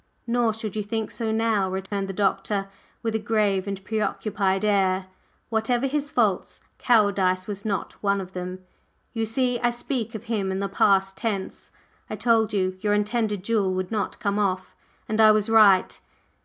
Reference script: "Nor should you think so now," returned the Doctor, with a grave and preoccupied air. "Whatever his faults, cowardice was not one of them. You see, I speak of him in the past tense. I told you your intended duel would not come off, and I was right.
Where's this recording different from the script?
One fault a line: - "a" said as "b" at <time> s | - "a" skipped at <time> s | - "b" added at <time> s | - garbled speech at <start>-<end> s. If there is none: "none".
none